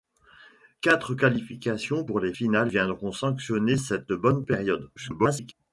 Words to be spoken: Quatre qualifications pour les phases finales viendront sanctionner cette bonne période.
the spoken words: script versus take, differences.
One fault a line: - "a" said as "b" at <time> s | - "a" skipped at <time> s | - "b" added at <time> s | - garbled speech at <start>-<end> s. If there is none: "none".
- "phases" skipped at 2.3 s
- garbled speech at 5.0-5.5 s